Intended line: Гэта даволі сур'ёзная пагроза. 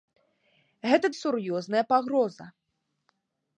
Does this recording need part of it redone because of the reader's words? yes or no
yes